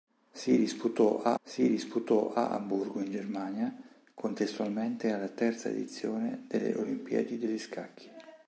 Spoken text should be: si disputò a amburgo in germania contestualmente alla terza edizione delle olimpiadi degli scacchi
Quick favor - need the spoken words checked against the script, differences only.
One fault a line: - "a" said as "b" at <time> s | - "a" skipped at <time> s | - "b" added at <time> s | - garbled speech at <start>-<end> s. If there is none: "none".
- "si disputò a" added at 1.4 s